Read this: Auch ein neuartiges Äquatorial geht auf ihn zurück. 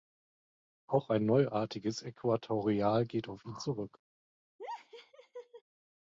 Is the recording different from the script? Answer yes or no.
no